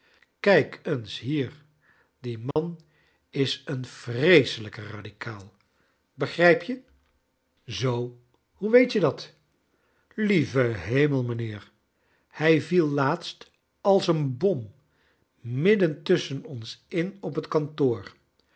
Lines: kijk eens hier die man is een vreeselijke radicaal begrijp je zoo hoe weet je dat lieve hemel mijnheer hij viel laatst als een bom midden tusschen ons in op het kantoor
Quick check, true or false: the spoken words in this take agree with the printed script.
true